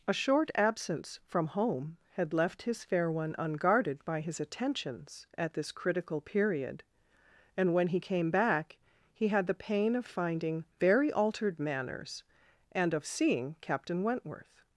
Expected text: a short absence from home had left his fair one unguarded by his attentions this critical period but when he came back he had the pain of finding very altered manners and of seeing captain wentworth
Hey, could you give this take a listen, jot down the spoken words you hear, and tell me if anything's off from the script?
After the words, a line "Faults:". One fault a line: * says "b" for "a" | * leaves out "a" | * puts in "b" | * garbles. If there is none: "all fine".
a short absence from home had left his fair one unguarded by his attentions at this critical period and when he came back he had the pain of finding very altered manners and of seeing captain wentworth
Faults:
* puts in "at"
* says "and" for "but"